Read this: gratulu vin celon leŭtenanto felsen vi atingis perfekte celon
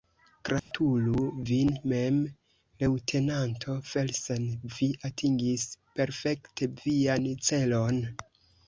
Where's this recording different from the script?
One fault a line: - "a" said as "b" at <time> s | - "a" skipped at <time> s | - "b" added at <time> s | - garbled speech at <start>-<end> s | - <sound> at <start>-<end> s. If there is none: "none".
- dropout at 0.6-0.7 s
- "celon" said as "mem" at 1.9 s
- "vian" added at 6.9 s